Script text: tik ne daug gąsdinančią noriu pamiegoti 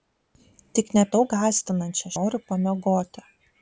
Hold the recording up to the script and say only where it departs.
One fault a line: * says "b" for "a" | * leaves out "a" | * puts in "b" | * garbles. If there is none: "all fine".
all fine